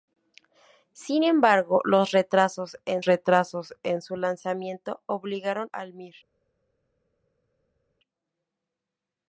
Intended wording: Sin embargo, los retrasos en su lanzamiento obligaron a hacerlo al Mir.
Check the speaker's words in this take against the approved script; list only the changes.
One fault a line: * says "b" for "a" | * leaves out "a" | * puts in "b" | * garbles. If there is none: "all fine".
* puts in "retrasos en"
* leaves out "a hacerlo"